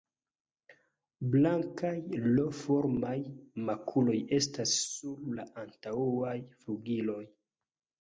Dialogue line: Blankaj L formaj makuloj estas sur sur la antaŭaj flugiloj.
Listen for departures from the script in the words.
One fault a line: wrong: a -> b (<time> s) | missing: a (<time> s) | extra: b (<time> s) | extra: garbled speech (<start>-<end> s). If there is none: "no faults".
missing: sur (5.2 s)